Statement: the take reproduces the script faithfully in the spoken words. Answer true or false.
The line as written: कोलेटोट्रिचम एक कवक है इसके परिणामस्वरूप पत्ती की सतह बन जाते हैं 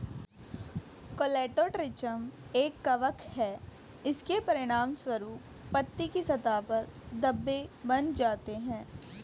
false